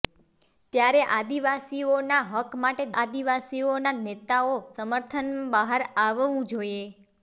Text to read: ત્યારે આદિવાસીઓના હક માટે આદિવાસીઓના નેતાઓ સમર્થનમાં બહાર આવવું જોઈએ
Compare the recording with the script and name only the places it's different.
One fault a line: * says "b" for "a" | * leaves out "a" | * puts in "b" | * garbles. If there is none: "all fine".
all fine